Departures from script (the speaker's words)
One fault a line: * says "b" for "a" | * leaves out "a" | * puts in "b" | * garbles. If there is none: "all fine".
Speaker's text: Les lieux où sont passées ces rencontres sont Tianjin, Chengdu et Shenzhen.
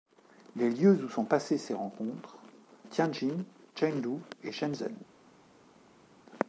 * leaves out "sont"